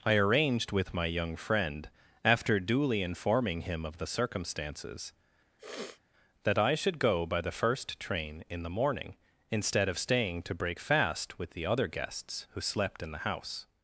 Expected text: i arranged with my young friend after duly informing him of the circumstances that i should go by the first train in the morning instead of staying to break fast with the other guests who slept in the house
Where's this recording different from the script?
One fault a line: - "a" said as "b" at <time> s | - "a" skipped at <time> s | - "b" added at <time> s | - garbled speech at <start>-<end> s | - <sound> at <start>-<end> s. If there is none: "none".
- sniff at 5.6-6.0 s